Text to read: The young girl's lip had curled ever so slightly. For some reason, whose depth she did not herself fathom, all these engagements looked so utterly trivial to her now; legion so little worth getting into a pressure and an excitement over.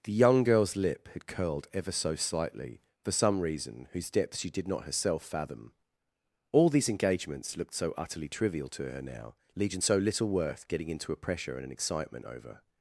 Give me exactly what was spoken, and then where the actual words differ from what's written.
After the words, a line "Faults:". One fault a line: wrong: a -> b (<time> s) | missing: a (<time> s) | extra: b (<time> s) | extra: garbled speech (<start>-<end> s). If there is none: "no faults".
The young girl's lip had curled ever so slightly. For some reason, whose depth she did not herself fathom, all these engagements looked so utterly trivial to her now; legion so little worth getting into a pressure and an excitement over.
Faults:
no faults